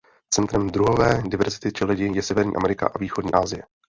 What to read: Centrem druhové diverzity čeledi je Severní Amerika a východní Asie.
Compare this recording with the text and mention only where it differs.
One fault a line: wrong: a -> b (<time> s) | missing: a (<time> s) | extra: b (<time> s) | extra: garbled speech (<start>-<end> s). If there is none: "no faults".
no faults